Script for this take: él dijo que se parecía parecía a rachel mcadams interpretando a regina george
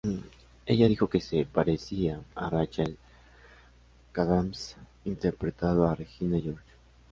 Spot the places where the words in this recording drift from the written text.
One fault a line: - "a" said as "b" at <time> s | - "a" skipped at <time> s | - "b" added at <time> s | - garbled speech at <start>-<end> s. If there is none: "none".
- "él" said as "ella" at 0.7 s
- "parecía" skipped at 2.2 s